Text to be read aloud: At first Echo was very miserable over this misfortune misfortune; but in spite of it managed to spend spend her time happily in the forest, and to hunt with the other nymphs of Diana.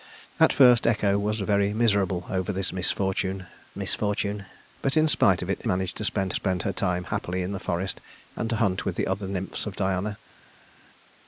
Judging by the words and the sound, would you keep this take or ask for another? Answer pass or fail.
pass